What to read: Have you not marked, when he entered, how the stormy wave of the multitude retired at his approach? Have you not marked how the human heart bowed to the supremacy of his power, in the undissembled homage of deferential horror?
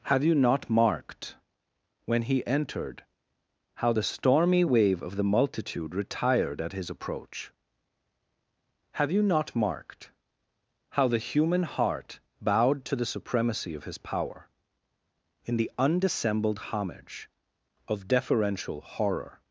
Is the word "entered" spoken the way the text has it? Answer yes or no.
yes